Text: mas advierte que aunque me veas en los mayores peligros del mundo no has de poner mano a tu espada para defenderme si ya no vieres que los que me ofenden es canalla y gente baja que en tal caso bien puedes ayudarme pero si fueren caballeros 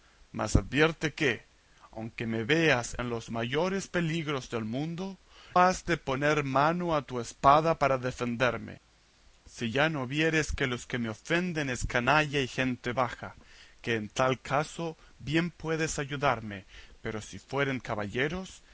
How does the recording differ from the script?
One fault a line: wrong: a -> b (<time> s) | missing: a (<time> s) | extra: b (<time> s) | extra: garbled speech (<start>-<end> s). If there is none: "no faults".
missing: no (5.2 s)